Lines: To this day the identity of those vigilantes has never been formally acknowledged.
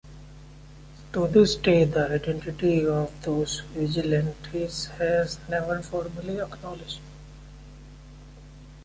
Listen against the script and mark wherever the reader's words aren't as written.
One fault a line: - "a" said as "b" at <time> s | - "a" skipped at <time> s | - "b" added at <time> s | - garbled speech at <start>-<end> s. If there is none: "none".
- "been" skipped at 5.8 s